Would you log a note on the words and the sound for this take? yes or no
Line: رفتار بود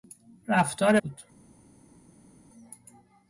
no